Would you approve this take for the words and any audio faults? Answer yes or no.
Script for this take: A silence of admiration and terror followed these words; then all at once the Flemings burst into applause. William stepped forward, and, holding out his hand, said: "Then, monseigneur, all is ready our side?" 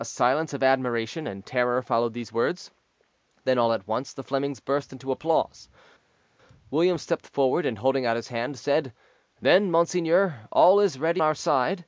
yes